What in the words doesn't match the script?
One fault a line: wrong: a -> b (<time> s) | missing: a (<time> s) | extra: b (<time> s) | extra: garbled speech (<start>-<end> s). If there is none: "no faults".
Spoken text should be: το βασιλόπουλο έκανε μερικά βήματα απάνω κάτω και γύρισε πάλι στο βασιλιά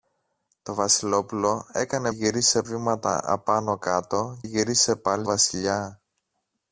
wrong: μερικά -> γύρισε (2.1 s)
missing: και (4.4 s)
missing: στο (5.3 s)